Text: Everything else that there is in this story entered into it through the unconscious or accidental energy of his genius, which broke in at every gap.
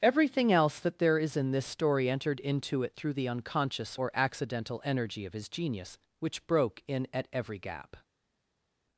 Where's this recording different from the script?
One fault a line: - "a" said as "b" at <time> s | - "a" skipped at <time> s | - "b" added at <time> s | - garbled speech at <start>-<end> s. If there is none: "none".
none